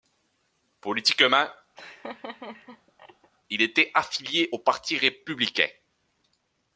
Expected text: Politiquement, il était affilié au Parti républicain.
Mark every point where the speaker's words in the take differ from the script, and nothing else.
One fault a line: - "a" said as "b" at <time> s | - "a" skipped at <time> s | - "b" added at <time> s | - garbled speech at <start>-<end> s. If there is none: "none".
none